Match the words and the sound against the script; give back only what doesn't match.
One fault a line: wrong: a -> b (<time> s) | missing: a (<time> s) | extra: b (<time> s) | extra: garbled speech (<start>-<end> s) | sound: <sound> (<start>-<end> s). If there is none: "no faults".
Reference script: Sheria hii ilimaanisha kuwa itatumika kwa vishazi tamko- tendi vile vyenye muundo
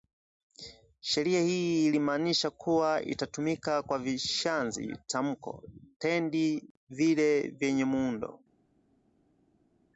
no faults